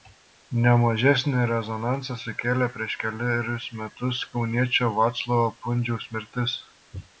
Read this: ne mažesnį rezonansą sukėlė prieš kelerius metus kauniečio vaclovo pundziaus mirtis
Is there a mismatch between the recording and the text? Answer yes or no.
no